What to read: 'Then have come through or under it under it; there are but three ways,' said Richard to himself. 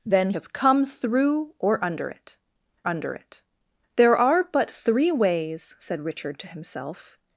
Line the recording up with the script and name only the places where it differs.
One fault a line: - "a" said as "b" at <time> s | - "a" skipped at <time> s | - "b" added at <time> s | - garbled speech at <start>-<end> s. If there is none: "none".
none